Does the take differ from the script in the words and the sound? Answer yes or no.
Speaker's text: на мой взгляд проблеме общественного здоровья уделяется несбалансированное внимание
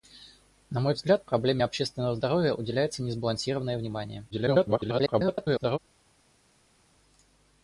yes